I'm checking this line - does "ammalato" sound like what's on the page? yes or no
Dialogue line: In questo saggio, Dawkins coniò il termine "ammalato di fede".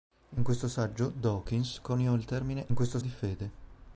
no